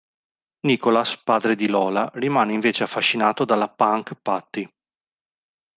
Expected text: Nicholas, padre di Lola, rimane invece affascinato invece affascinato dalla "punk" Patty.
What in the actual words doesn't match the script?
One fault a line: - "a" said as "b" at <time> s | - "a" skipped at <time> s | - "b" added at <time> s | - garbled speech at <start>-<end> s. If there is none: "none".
- "invece affascinato" skipped at 3.5 s